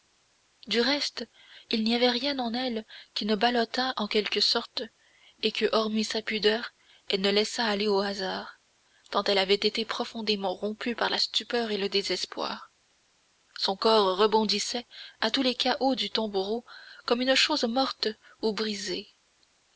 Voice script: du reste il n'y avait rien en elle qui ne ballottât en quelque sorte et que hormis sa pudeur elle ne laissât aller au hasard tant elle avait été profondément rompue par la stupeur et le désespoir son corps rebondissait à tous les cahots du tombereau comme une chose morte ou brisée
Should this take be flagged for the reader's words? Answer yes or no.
no